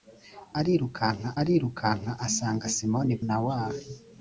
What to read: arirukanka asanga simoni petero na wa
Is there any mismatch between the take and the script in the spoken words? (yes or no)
yes